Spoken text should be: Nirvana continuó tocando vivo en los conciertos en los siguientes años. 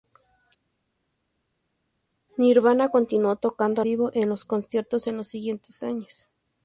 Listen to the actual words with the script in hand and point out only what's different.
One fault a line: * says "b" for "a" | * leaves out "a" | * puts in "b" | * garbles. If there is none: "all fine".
all fine